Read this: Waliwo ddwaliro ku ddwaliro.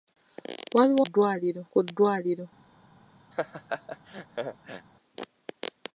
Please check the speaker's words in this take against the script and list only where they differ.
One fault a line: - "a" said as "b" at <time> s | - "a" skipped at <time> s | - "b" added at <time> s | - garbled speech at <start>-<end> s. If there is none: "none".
none